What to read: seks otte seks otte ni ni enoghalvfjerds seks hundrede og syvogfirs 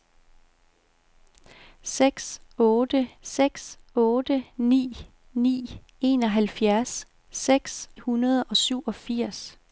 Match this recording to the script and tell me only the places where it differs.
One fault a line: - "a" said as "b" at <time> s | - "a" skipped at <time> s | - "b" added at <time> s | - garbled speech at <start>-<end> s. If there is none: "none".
none